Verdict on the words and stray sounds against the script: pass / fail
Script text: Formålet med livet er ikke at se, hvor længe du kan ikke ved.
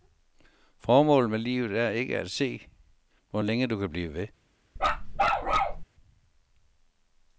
fail